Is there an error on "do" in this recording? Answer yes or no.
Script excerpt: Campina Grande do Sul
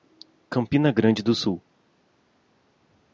no